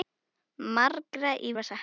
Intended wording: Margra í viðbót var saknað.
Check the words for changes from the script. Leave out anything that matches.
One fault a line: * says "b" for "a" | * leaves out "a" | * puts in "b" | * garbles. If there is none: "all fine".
* leaves out "viðbót"